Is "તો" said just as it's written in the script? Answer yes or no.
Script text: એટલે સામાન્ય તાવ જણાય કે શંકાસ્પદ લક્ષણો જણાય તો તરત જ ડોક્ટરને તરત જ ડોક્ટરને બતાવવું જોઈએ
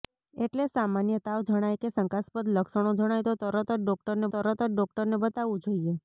yes